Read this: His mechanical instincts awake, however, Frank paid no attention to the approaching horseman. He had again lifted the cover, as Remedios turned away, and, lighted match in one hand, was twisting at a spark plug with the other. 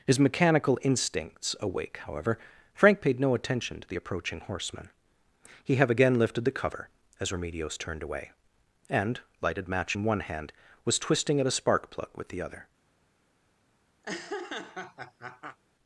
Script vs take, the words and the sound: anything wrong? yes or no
yes